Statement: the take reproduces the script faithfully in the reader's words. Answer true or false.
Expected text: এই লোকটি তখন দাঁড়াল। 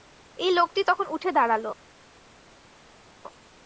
false